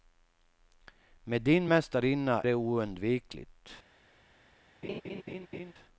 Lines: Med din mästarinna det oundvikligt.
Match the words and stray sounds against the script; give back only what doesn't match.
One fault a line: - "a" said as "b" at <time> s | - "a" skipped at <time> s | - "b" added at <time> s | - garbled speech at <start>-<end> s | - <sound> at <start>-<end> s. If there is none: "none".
- laugh at 4.8-5.7 s